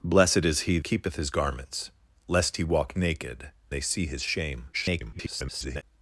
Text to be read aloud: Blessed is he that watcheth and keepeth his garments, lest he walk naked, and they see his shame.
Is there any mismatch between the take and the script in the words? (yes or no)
yes